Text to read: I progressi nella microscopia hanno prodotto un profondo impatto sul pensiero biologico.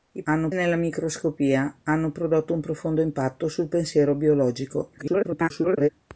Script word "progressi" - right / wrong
wrong